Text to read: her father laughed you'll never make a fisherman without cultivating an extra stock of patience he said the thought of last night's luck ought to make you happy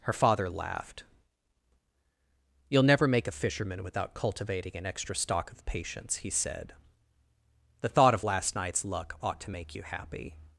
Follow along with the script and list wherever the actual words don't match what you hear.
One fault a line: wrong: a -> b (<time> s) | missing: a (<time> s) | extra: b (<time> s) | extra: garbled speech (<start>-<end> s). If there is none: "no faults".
no faults